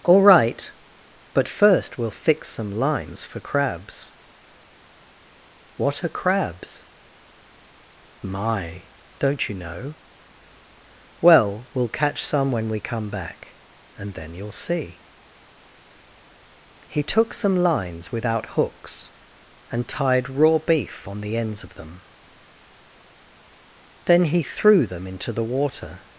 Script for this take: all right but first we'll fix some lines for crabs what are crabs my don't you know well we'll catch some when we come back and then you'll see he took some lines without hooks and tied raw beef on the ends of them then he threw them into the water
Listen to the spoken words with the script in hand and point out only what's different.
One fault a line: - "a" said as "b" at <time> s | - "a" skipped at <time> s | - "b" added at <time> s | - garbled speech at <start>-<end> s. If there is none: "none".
none